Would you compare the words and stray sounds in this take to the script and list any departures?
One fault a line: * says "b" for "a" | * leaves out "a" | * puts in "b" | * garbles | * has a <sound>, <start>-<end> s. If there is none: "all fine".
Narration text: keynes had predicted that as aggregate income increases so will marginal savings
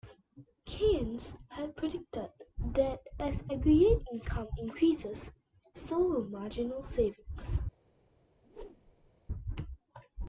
* has a whoosh, 8.4-9.1 s